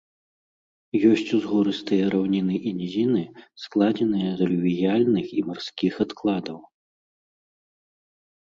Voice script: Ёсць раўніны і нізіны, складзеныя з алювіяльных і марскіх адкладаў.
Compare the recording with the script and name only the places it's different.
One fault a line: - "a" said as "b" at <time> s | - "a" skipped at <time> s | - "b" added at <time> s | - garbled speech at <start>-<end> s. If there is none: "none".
- "узгорыстыя" added at 1.4 s